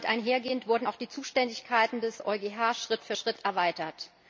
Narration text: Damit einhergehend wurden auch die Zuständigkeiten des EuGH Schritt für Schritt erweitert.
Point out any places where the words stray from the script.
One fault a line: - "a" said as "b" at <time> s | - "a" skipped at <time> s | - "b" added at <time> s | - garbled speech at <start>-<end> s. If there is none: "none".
none